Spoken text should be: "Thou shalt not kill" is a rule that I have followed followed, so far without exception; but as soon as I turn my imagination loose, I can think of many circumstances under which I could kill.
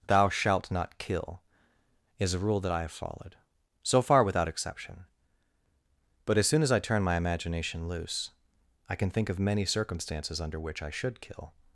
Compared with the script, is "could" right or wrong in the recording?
wrong